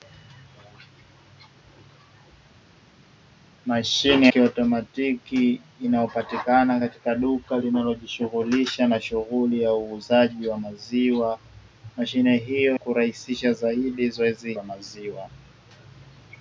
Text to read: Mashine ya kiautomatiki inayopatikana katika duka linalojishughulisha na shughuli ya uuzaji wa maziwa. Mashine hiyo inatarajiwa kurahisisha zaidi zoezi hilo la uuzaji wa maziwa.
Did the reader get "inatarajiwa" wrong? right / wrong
wrong